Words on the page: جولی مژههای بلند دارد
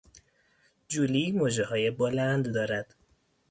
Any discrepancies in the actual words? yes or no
no